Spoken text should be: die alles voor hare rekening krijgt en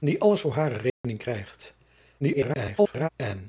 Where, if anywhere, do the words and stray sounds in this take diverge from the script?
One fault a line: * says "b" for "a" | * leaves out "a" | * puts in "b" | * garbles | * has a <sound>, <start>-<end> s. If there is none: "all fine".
* has a dropout, 0.9-1.0 s
* garbles